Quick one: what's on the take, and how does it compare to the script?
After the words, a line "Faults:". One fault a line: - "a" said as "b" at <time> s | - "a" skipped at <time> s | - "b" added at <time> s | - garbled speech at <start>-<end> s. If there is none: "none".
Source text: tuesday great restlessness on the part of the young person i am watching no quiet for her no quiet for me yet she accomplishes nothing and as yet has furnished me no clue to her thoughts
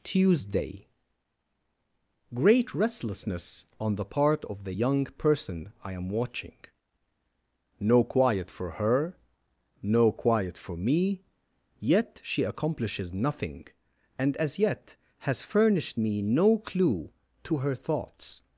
tuesday great restlessness on the part of the young person i am watching no quiet for her no quiet for me yet she accomplishes nothing and as yet has furnished me no clue to her thoughts
Faults:
none